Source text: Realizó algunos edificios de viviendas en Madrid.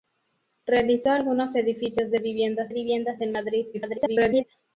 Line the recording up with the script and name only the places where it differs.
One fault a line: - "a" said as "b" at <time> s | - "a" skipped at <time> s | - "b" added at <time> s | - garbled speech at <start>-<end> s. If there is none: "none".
- "viviendas" added at 2.7 s
- garbled speech at 3.7-4.4 s